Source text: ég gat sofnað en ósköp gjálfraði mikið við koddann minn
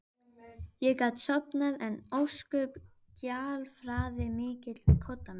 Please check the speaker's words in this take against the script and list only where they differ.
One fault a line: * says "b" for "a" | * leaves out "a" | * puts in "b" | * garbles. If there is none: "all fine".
all fine